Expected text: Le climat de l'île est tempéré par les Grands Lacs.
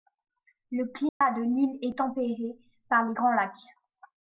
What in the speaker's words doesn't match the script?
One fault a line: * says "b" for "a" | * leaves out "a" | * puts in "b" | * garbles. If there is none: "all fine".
all fine